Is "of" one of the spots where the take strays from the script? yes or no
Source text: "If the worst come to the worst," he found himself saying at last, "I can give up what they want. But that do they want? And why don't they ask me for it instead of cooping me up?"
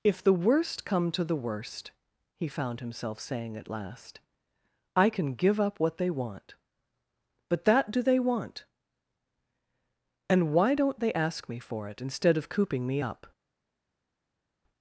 no